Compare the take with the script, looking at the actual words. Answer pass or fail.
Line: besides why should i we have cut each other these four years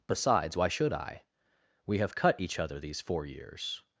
pass